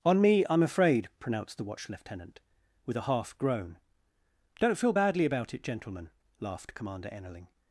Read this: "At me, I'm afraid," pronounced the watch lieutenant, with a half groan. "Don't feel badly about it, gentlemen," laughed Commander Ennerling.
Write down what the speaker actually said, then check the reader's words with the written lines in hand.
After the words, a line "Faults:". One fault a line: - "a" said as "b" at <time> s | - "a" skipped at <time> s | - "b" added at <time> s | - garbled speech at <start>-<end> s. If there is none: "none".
"On me, I'm afraid," pronounced the watch lieutenant, with a half groan. "Don't feel badly about it, gentlemen," laughed Commander Ennerling.
Faults:
- "At" said as "On" at 0.0 s